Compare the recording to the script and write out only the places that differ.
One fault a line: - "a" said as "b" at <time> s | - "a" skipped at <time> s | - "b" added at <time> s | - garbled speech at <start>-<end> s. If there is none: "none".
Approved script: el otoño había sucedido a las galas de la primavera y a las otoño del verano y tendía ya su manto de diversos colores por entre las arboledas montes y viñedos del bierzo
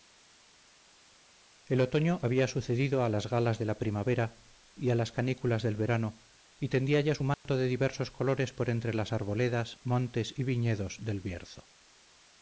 - "otoño" said as "canículas" at 5.1 s